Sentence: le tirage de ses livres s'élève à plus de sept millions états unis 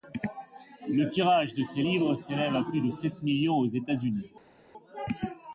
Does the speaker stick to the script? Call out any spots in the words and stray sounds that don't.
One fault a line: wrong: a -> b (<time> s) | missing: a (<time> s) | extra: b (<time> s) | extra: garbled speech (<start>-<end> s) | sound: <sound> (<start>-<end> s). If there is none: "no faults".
extra: aux (3.6 s)